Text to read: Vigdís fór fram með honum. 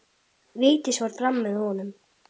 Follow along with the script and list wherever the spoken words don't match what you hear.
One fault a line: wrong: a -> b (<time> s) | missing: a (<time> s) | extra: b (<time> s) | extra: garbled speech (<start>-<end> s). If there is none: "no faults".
no faults